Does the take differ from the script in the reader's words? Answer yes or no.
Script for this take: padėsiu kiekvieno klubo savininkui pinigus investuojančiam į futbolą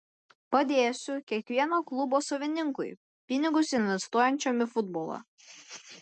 no